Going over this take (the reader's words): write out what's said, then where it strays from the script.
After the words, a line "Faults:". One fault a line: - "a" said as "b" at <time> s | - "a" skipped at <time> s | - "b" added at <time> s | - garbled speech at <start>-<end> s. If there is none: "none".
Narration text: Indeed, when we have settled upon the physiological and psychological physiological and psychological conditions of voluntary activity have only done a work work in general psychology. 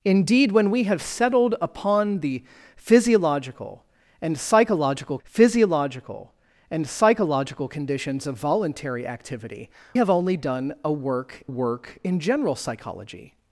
Indeed, when we have settled upon the physiological and psychological physiological and psychological conditions of voluntary activity have only done a work work in general psychology.
Faults:
none